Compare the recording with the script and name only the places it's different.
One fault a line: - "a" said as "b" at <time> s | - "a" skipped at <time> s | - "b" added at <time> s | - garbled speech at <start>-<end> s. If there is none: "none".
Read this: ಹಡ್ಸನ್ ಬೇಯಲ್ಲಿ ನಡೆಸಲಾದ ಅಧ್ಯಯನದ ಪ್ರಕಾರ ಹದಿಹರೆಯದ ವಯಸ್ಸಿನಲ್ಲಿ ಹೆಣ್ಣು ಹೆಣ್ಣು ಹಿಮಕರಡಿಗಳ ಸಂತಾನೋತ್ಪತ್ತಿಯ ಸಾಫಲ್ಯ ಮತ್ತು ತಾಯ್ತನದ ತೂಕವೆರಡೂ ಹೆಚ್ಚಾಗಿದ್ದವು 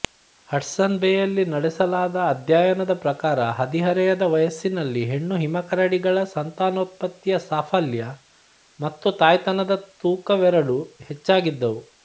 - "ಹೆಣ್ಣು" skipped at 5.3 s